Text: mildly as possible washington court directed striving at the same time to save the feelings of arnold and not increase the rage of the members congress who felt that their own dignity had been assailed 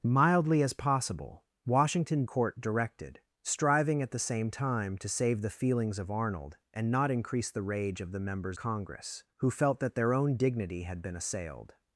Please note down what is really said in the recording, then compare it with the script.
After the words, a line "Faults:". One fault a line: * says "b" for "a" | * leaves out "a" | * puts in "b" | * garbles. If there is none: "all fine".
mildly as possible washington court directed striving at the same time to save the feelings of arnold and not increase the rage of the members congress who felt that their own dignity had been assailed
Faults:
all fine